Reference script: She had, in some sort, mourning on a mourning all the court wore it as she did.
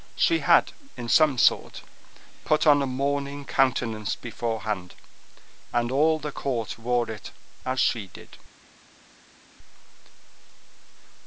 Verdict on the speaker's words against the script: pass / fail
fail